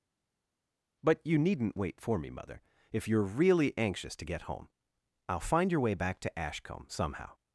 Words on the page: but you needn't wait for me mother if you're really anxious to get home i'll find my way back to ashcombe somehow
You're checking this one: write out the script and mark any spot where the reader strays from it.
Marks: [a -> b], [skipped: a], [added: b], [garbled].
but you needn't wait for me mother if you're really anxious to get home i'll find [my -> your] way back to ashcombe somehow